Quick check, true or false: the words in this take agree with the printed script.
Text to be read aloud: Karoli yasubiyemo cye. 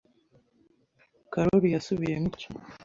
true